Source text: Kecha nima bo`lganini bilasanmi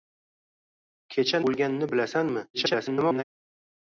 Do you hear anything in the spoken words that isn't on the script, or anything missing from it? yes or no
yes